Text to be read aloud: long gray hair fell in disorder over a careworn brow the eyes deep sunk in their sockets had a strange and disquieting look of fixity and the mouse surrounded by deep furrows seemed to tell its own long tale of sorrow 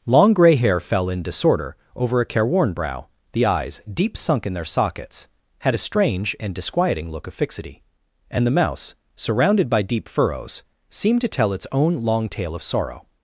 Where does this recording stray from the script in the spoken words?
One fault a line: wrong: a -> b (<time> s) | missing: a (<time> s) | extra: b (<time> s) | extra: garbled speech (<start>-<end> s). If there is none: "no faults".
no faults